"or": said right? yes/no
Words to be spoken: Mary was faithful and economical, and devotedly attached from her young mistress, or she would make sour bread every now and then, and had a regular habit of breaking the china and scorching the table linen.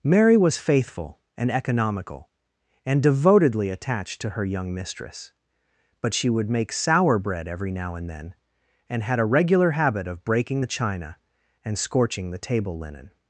no